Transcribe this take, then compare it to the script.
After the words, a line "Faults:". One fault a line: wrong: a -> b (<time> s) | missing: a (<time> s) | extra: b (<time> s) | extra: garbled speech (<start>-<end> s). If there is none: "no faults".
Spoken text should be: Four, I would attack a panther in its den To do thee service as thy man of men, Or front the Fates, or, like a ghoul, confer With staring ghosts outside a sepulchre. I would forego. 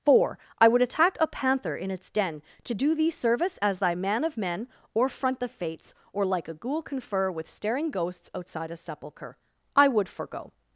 Four, I would attack a panther in its den To do thee service as thy man of men, Or front the Fates, or, like a ghoul, confer With staring ghosts outside a sepulchre. I would forego.
Faults:
no faults